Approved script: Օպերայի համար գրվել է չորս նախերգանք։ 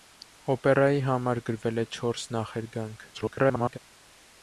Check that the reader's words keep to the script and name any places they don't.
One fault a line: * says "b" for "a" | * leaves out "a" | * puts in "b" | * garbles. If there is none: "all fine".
* garbles